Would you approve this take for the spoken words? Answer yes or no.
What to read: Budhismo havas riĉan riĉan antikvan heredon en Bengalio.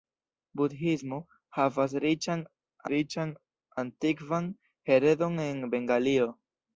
yes